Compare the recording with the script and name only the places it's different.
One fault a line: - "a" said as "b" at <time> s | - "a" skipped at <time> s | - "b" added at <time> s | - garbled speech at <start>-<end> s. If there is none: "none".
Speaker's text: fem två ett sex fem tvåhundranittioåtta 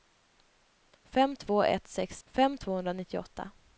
none